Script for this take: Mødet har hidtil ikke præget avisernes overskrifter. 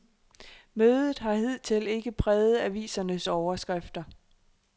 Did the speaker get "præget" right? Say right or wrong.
right